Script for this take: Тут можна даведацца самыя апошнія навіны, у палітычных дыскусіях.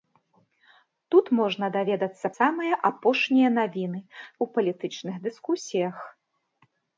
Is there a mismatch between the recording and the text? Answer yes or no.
no